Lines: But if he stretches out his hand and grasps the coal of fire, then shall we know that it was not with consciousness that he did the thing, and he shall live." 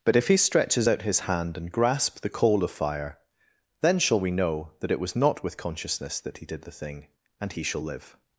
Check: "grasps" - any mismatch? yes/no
yes